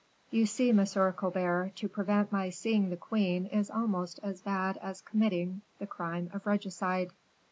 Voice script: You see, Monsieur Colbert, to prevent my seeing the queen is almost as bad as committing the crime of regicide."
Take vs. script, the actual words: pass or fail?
pass